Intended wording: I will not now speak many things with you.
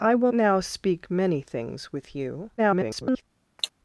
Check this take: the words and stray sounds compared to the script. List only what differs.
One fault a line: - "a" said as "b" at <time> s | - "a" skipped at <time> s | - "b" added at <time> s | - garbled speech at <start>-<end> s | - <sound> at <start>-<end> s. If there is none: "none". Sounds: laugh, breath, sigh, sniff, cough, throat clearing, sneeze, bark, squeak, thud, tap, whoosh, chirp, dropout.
- "not" skipped at 0.3 s
- garbled speech at 2.6-3.2 s
- cough at 3.6-3.7 s